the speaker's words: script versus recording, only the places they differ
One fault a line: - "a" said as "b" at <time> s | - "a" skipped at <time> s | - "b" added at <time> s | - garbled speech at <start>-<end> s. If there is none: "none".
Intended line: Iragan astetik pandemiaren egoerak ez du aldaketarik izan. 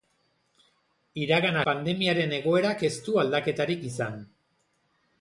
- "astetik" skipped at 1.6 s